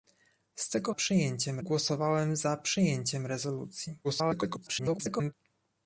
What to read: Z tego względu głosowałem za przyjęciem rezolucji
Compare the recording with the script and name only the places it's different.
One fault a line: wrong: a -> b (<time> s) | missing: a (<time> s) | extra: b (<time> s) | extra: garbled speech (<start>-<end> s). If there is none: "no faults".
wrong: względu -> przyjęciem (0.9 s)
extra: garbled speech (4.0-5.3 s)